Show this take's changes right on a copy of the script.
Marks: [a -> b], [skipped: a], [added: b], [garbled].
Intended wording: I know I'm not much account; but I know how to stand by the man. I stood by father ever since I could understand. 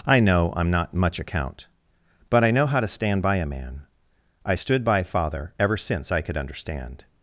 I know I'm not much account; but I know how to stand by [the -> a] man. I stood by father ever since I could understand.